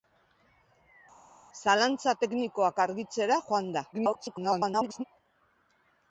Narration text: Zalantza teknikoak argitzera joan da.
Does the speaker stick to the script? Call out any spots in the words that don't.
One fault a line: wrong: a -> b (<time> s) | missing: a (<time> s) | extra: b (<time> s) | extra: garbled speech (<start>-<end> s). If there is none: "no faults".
extra: garbled speech (3.9-5.0 s)